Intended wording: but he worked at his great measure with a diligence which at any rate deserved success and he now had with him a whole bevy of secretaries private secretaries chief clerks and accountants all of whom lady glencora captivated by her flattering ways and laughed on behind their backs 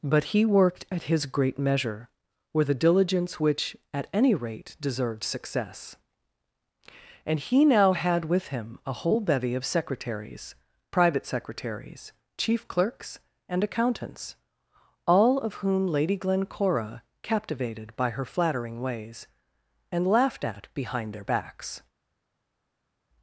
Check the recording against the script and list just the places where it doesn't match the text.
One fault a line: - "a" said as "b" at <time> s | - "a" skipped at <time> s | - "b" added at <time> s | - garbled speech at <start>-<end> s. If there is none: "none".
- "on" said as "at" at 20.5 s